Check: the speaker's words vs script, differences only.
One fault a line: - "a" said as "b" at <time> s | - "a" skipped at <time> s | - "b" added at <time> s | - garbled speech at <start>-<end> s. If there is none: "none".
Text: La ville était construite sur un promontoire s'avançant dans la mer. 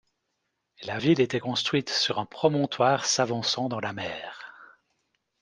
none